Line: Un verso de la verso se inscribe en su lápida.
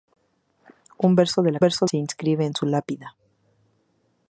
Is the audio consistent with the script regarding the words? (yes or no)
yes